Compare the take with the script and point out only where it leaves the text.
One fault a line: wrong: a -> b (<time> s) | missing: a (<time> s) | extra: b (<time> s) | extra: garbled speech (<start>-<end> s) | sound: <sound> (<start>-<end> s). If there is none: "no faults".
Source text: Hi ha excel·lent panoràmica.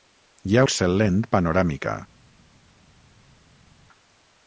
no faults